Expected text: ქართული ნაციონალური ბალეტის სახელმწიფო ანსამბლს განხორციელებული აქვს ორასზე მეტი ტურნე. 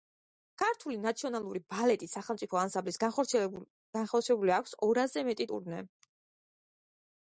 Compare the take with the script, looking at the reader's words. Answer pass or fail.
pass